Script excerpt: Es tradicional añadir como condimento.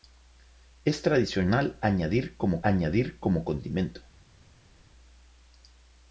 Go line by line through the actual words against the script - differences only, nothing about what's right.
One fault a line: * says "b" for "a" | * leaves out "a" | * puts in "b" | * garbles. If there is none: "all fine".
* puts in "añadir como"